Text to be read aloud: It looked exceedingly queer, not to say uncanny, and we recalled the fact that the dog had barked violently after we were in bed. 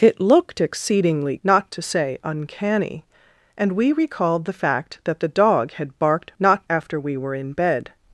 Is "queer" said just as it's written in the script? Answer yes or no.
no